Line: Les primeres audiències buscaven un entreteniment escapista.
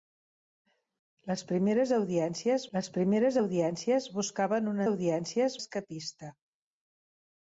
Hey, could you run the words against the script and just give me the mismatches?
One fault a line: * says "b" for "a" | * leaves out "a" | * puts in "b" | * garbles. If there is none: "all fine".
* puts in "les primeres audiències"
* says "audiències" for "entreteniment"